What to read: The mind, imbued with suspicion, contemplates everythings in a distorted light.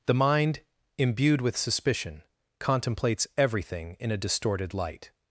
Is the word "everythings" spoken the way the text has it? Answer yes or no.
no